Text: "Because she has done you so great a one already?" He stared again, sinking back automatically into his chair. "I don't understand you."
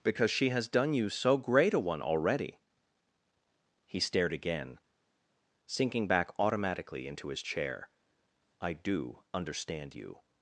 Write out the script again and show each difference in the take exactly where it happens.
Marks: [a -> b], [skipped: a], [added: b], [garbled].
"Because she has done you so great a one already?" He stared again, sinking back automatically into his chair. "I [don't -> do] understand you."